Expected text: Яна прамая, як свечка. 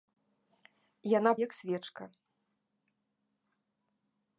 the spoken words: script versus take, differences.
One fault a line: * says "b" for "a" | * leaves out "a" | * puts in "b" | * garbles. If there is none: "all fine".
* leaves out "прамая"